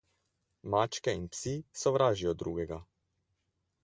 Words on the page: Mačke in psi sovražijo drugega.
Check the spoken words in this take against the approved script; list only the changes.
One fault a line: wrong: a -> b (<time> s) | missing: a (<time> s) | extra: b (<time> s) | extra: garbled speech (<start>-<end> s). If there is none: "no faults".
no faults